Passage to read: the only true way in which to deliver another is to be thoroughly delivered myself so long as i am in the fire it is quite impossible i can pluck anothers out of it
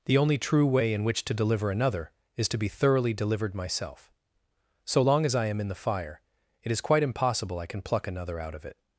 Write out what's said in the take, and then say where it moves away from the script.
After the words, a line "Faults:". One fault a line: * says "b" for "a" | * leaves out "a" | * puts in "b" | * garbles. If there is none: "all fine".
the only true way in which to deliver another is to be thoroughly delivered myself so long as i am in the fire it is quite impossible i can pluck another out of it
Faults:
* says "another" for "anothers"